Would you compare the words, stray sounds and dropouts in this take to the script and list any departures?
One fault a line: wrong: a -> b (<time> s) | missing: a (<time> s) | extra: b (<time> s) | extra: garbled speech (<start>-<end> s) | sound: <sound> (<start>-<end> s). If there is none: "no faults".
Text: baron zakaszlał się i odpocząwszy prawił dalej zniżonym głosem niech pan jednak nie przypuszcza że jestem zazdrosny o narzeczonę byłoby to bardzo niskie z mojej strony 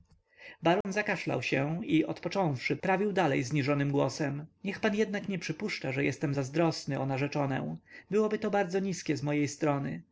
sound: dropout (0.8-0.8 s)